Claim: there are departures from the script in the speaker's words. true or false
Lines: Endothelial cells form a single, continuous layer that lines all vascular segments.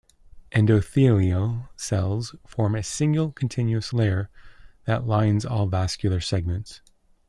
false